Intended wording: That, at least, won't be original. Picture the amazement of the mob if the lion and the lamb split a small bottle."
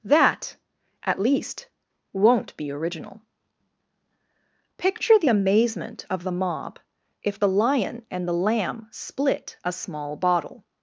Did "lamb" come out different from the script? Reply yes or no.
no